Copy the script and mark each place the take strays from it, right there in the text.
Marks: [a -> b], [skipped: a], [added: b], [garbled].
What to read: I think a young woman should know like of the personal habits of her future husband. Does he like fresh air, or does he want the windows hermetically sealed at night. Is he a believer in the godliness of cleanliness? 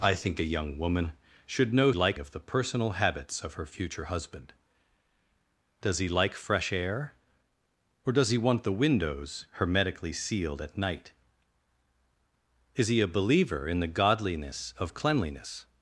I think a young woman should know like of the personal habits of her future husband. Does he like fresh air, or does he want the windows hermetically sealed at night. Is he a believer in the godliness of cleanliness?